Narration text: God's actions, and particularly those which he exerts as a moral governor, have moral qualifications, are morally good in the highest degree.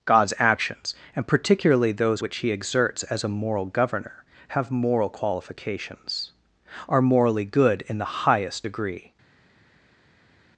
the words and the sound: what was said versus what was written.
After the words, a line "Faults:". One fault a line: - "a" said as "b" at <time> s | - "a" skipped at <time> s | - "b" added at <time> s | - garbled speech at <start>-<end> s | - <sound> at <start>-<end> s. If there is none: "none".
God's actions, and particularly those which he exerts as a moral governor, have moral qualifications, are morally good in the highest degree.
Faults:
none